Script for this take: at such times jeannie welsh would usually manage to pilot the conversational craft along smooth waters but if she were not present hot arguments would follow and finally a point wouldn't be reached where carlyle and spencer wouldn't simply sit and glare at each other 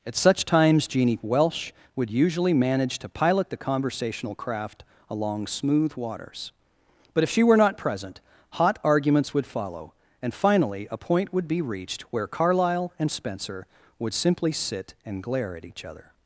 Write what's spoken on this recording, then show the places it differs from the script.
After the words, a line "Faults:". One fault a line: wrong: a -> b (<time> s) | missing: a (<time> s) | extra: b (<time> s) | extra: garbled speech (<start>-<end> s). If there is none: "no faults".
at such times jeannie welsh would usually manage to pilot the conversational craft along smooth waters but if she were not present hot arguments would follow and finally a point would be reached where carlyle and spencer would simply sit and glare at each other
Faults:
wrong: wouldn't -> would (11.3 s)
wrong: wouldn't -> would (14.0 s)